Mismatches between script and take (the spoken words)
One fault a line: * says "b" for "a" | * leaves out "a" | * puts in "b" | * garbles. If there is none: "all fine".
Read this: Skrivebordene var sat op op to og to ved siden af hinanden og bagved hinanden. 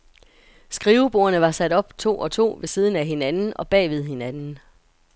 * leaves out "op"